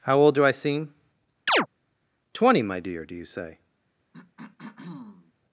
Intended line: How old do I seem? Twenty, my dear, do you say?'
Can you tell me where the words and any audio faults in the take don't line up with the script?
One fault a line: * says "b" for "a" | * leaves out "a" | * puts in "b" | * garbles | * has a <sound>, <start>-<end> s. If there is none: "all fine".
* has a chirp, 1.5-1.7 s
* has a throat clearing, 4.1-5.3 s